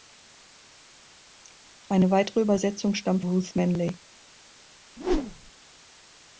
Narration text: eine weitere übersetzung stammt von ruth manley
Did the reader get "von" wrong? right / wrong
wrong